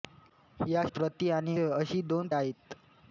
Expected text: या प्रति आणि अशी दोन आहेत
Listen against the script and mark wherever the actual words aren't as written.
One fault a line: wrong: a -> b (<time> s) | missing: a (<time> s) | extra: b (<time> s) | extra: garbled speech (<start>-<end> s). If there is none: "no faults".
no faults